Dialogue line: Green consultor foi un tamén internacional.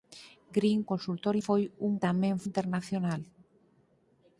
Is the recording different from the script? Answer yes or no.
no